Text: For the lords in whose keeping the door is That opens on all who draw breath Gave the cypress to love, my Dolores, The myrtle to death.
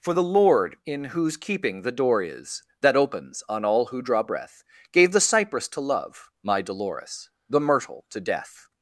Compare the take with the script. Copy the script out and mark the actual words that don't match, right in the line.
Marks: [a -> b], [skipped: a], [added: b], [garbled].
For the [lords -> lord] in whose keeping the door is That opens on all who draw breath Gave the cypress to love, my Dolores, The myrtle to death.